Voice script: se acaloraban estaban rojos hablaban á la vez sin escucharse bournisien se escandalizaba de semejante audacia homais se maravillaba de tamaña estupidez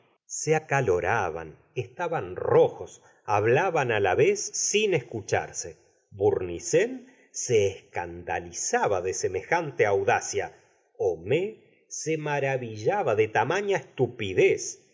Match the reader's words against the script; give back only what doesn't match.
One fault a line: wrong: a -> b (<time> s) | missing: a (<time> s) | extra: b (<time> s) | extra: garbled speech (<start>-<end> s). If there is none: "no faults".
no faults